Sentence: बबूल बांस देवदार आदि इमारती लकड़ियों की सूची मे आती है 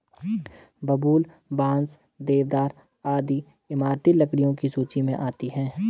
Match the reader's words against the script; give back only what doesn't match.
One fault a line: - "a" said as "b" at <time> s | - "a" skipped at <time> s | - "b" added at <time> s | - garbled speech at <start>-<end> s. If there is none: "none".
none